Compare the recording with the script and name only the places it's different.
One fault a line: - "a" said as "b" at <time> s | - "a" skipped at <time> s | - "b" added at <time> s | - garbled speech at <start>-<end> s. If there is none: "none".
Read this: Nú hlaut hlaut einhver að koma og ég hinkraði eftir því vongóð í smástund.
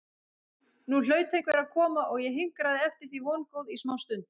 - "hlaut" skipped at 1.4 s